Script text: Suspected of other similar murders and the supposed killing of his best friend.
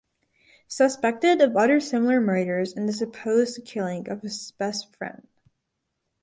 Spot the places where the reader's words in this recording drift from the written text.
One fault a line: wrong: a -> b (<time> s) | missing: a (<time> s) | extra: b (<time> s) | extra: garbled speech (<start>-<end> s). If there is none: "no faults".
no faults